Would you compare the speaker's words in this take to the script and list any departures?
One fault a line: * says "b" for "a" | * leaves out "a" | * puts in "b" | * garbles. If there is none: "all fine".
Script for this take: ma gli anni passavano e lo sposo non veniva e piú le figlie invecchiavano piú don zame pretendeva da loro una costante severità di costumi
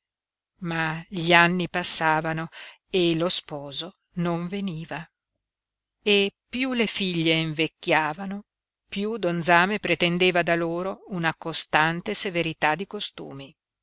all fine